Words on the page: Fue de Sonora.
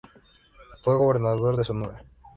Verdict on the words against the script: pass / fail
fail